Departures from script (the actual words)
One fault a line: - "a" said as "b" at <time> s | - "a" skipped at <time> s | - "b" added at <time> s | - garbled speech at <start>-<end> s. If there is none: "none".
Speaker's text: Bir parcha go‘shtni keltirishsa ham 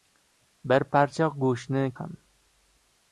- "keltirishsa" skipped at 1.8 s